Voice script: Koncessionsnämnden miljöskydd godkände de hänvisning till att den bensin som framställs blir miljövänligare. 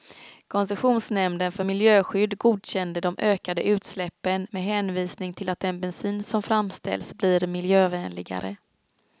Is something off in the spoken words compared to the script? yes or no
yes